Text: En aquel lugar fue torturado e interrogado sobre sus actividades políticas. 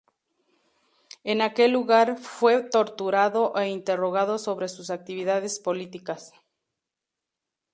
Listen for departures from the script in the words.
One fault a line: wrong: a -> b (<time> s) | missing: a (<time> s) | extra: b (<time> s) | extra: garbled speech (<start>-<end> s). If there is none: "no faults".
no faults